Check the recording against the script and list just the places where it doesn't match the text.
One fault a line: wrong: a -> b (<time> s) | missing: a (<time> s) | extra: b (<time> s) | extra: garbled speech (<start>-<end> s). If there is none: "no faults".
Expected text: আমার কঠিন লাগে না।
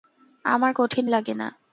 no faults